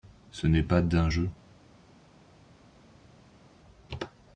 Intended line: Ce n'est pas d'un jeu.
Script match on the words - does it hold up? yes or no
yes